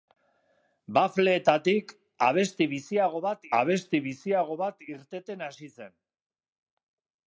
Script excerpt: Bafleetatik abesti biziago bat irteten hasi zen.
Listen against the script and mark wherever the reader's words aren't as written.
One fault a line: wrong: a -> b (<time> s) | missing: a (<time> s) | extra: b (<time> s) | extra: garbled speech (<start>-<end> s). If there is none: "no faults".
extra: abesti biziago bat (3.6 s)